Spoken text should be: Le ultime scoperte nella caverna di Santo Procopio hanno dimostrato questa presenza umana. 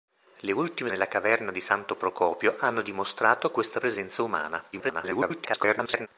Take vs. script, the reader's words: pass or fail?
fail